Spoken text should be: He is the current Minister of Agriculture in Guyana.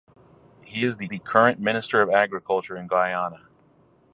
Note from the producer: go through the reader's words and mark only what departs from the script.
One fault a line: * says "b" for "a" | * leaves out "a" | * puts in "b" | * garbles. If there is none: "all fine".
* puts in "the"